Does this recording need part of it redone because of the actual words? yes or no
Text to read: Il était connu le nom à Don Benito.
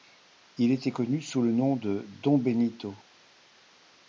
yes